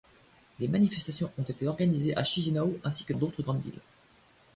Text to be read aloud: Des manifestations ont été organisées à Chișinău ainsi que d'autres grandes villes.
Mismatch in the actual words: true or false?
false